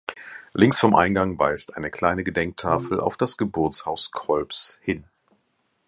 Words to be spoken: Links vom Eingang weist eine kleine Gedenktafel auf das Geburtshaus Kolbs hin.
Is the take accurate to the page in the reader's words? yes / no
yes